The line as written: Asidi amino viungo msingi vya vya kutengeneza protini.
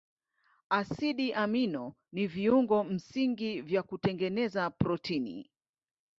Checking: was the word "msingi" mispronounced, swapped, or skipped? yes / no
no